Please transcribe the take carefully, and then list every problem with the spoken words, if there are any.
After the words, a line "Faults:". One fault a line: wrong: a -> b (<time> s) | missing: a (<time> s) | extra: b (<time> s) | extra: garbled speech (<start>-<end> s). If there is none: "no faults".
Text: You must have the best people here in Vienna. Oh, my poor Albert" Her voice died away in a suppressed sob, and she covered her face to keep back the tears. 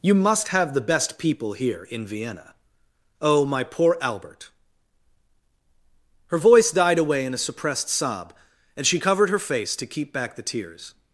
You must have the best people here in Vienna. Oh, my poor Albert" Her voice died away in a suppressed sob, and she covered her face to keep back the tears.
Faults:
no faults